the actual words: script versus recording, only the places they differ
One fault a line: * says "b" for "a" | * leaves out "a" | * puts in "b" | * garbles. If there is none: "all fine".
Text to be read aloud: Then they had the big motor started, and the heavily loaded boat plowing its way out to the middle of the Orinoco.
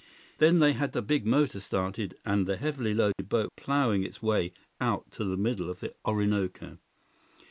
all fine